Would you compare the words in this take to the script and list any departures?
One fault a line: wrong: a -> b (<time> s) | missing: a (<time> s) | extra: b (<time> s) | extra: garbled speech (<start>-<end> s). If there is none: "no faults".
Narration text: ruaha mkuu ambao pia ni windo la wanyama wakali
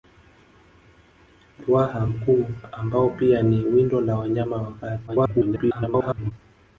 extra: garbled speech (5.1-6.3 s)